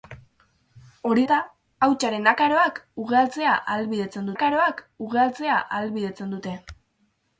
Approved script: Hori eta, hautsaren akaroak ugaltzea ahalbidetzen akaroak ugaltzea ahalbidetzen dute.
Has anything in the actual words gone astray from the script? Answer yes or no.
no